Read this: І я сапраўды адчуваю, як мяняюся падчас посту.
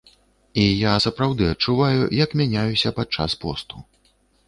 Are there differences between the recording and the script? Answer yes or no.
no